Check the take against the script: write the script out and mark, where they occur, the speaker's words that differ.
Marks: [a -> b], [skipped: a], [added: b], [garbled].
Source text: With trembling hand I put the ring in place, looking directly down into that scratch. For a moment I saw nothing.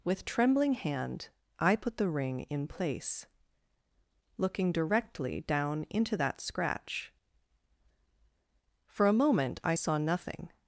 With trembling hand I put the ring in place, looking directly down into that scratch. For a moment I saw nothing.